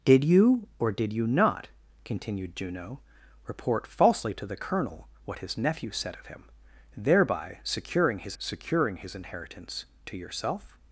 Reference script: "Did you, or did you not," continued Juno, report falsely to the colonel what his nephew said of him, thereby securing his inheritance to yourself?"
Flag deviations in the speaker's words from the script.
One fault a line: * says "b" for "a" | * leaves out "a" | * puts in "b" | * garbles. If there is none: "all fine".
* puts in "securing his"